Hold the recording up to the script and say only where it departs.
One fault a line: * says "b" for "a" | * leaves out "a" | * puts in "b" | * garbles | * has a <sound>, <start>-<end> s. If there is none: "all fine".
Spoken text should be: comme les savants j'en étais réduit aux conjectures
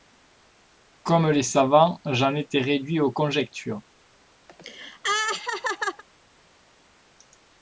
* has a laugh, 4.5-6.0 s